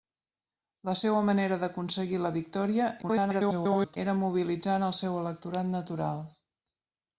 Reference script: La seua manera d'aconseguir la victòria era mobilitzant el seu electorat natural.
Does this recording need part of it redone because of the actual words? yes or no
yes